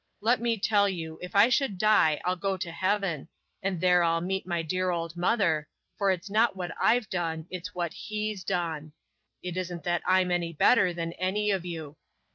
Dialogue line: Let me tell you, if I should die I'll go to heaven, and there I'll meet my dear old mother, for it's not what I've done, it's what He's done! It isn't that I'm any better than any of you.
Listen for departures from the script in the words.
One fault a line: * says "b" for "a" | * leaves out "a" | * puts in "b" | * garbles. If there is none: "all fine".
all fine